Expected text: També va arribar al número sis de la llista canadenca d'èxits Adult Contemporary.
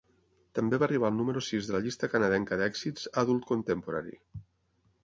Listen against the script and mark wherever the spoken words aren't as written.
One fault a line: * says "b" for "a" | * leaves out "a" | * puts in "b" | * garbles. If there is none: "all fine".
all fine